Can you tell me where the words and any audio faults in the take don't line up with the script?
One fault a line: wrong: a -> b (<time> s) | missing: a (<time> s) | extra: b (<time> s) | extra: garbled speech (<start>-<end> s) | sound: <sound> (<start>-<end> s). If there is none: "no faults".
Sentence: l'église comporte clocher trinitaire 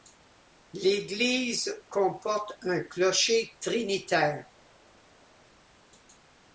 extra: un (2.6 s)